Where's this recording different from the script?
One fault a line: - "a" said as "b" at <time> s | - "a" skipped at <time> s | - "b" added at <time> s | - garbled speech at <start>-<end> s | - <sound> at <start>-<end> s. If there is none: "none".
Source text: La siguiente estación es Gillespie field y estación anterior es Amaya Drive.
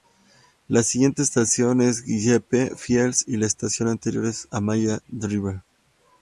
- "la" added at 3.3 s